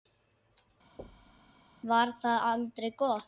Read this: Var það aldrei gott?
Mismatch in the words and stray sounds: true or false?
true